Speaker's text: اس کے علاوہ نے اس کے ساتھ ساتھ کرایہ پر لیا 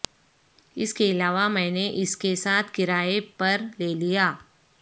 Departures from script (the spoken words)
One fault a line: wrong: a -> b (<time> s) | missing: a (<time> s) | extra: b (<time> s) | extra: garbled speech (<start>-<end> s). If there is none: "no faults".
extra: میں (1.5 s)
missing: ساتھ (2.7 s)
extra: لے (3.8 s)